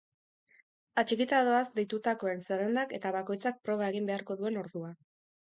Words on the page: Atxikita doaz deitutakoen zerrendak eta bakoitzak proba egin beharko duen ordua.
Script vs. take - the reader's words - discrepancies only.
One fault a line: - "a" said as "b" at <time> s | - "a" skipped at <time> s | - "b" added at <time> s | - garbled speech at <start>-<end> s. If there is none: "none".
none